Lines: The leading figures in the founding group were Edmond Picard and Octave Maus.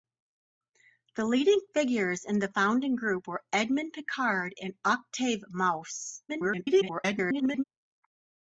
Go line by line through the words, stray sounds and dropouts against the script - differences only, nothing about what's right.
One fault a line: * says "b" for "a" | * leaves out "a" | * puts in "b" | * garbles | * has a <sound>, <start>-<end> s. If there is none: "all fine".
* garbles